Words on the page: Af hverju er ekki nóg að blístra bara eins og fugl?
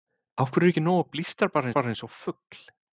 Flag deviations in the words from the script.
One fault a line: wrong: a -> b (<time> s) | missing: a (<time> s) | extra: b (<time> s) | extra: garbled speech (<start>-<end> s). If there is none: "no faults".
extra: bara (1.8 s)